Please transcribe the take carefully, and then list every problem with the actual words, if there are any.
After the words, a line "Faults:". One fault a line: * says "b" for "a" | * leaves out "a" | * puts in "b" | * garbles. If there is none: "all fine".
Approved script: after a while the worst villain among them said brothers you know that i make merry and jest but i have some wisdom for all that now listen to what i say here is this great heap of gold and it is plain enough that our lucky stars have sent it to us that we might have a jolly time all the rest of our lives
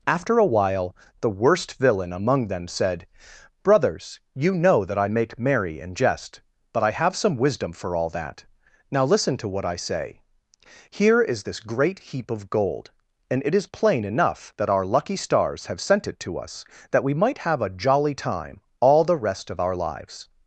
after a while the worst villain among them said brothers you know that i make merry and jest but i have some wisdom for all that now listen to what i say here is this great heap of gold and it is plain enough that our lucky stars have sent it to us that we might have a jolly time all the rest of our lives
Faults:
all fine